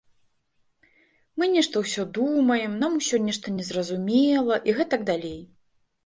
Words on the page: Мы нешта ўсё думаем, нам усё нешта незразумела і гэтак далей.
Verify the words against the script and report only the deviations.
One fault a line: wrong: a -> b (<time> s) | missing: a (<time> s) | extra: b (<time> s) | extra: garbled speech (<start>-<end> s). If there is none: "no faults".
no faults